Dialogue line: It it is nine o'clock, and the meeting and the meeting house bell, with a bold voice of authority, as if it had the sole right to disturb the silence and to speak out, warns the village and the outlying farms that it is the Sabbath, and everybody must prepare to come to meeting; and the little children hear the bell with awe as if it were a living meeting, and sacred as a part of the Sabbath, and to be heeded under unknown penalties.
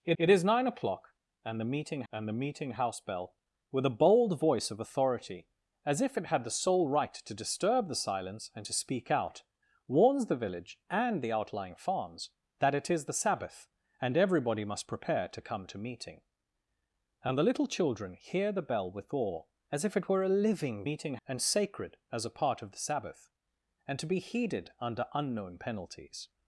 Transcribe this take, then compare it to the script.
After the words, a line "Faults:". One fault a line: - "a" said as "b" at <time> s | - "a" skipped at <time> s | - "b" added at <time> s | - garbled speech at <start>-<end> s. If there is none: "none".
It it is nine o'clock, and the meeting and the meeting house bell, with a bold voice of authority, as if it had the sole right to disturb the silence and to speak out, warns the village and the outlying farms that it is the Sabbath, and everybody must prepare to come to meeting; and the little children hear the bell with awe as if it were a living meeting, and sacred as a part of the Sabbath, and to be heeded under unknown penalties.
Faults:
none